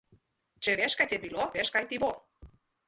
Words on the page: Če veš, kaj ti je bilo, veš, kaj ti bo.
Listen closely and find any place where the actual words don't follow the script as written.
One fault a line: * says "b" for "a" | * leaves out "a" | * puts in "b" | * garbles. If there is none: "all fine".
all fine